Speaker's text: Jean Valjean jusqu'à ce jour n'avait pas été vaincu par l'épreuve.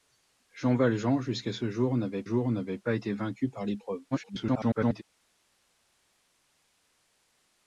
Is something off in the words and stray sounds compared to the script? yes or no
yes